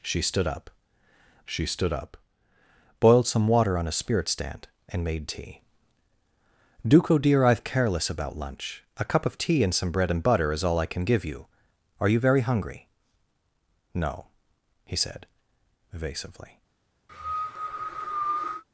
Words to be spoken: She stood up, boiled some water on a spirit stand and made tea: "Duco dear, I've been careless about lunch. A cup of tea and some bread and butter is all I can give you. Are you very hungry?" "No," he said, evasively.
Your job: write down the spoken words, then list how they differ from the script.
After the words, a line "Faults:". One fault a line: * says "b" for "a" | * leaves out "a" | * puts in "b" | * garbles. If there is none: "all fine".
She stood up she stood up, boiled some water on a spirit stand and made tea: "Duco dear, I've careless about lunch. A cup of tea and some bread and butter is all I can give you. Are you very hungry?" "No," he said, evasively.
Faults:
* puts in "she stood up"
* leaves out "been"